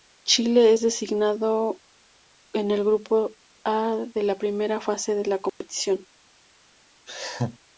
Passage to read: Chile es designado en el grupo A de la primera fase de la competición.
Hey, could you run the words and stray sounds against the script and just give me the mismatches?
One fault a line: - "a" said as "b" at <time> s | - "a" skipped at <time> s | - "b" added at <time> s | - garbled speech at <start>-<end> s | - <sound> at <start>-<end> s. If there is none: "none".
- dropout at 5.5-5.6 s
- laugh at 7.1-7.6 s